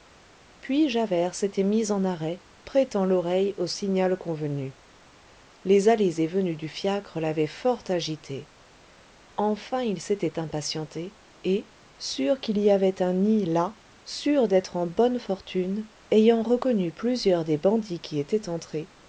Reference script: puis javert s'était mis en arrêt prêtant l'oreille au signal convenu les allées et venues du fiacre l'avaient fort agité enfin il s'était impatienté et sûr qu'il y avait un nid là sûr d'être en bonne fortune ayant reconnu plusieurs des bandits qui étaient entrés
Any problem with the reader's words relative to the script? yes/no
no